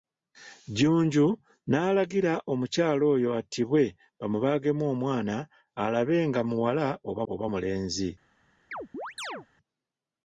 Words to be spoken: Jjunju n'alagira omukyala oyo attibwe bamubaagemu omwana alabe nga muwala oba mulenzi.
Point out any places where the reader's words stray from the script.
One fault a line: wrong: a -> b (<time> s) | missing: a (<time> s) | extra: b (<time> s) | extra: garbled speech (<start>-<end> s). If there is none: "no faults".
extra: oba (7.3 s)